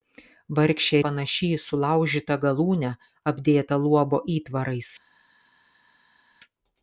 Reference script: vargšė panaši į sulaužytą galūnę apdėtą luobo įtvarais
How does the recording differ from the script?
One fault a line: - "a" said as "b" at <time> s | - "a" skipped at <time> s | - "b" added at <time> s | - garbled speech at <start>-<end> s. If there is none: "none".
none